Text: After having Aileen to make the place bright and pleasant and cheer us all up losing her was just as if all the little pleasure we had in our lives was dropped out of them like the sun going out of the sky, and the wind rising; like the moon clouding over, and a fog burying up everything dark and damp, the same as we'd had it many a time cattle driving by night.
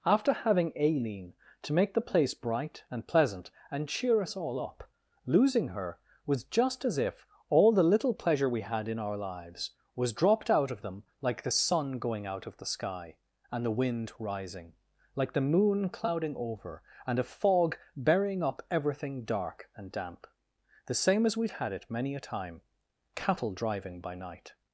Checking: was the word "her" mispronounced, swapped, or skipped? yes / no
no